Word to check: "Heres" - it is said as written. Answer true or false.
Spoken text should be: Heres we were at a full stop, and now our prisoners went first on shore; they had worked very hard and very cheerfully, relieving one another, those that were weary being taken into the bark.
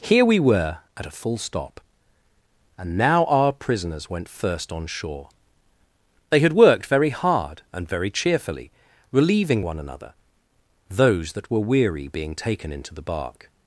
false